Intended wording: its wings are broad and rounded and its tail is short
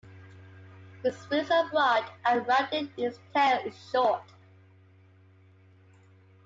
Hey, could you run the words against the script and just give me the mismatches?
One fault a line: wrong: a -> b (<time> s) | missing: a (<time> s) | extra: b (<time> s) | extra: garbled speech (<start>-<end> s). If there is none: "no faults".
no faults